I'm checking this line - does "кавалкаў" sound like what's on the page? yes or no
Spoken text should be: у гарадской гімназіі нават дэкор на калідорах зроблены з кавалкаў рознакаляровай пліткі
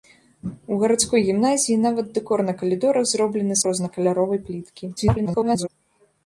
no